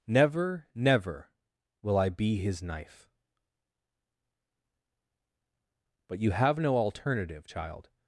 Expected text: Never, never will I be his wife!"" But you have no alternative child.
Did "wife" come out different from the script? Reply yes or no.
yes